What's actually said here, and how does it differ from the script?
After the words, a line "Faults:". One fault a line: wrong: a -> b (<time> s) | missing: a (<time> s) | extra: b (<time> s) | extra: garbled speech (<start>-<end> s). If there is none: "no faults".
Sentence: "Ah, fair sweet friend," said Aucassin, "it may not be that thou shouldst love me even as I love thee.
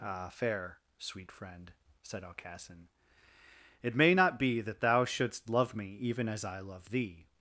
"Ah, fair sweet friend," said Aucassin, "it may not be that thou shouldst love me even as I love thee.
Faults:
no faults